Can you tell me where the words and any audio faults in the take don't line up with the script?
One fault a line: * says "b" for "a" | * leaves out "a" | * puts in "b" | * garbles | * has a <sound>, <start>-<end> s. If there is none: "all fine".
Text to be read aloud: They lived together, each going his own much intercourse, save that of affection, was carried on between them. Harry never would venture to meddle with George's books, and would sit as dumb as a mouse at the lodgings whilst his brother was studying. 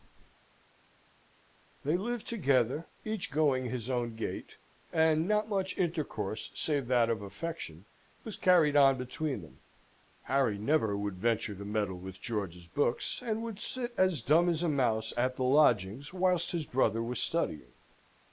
* puts in "gait and not"